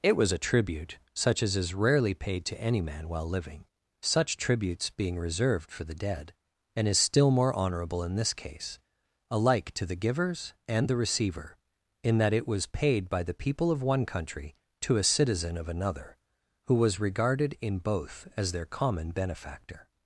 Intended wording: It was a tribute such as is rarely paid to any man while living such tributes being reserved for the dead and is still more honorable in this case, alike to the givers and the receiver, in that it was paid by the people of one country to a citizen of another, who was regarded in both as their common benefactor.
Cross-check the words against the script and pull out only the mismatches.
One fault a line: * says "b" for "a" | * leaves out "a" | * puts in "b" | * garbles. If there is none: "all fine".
all fine